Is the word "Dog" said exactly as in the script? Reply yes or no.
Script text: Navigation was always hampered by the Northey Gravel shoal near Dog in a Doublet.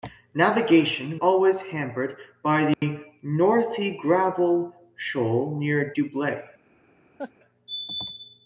no